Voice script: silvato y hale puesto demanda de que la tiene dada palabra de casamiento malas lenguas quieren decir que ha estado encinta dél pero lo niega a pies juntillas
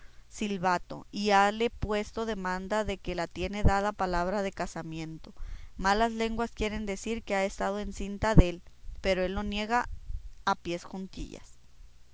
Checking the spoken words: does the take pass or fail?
fail